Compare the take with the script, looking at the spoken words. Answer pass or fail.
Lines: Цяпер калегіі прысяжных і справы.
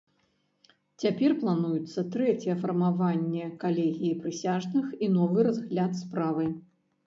fail